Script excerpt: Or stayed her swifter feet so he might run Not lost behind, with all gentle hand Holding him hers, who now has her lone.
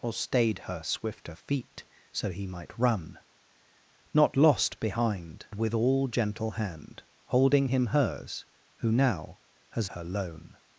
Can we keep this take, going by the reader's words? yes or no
yes